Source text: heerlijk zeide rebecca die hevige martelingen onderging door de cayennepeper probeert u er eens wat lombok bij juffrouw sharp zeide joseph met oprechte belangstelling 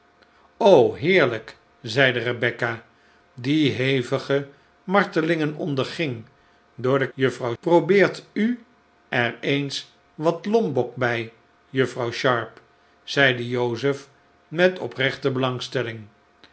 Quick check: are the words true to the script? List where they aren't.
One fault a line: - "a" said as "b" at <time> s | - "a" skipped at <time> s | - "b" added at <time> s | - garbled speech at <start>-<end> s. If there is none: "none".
- "cayennepeper" said as "juffrouw" at 7.1 s